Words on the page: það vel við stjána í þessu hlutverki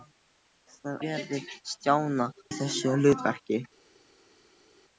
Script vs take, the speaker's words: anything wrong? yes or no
no